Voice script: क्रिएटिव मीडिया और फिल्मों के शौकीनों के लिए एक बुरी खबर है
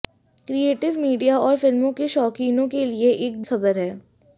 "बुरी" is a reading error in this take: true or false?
true